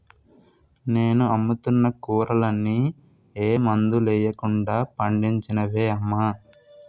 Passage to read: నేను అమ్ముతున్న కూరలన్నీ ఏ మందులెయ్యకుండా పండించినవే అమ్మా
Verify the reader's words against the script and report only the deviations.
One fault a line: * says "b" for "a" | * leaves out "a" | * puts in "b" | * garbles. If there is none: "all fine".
all fine